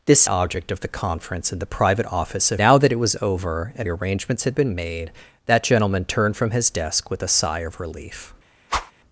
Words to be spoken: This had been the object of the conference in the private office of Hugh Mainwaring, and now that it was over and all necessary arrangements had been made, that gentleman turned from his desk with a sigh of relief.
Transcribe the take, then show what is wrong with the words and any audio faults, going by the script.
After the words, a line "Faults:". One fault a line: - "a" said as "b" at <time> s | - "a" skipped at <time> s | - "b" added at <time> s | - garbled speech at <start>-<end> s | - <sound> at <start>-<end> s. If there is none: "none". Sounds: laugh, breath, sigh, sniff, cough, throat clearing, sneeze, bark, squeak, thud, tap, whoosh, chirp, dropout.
This object of the conference in the private office of Now that it was over and arrangements had been made, that gentleman turned from his desk with a sigh of relief.
Faults:
- "had been the" skipped at 0.2 s
- "Hugh Mainwaring and" skipped at 2.6 s
- "all necessary" skipped at 3.9 s
- whoosh at 8.7-8.9 s